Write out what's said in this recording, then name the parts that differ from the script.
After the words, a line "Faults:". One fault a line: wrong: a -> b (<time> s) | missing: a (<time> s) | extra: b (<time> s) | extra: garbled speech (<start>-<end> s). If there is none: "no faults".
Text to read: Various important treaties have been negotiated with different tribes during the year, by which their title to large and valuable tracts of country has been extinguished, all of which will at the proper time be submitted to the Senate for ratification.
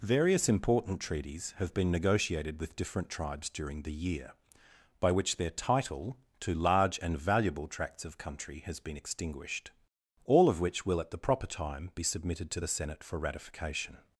Various important treaties have been negotiated with different tribes during the year, by which their title to large and valuable tracts of country has been extinguished, all of which will at the proper time be submitted to the Senate for ratification.
Faults:
no faults